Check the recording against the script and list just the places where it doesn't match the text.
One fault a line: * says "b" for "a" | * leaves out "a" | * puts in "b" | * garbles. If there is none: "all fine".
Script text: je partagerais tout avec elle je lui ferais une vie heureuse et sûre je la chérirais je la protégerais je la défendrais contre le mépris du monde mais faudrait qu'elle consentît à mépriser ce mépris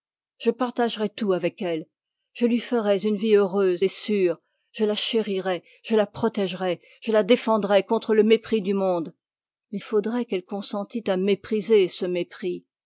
all fine